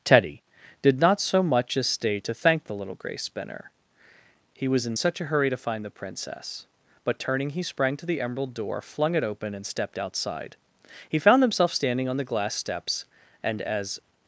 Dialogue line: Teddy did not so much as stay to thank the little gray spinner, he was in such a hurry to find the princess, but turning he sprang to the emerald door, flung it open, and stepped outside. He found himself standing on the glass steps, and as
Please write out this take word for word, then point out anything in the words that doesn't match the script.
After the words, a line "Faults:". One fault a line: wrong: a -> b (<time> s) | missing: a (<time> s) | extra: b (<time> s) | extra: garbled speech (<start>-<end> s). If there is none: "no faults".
Teddy did not so much as stay to thank the little gray spinner, he was in such a hurry to find the princess, but turning he sprang to the emerald door, flung it open, and stepped outside. He found himself standing on the glass steps, and as
Faults:
no faults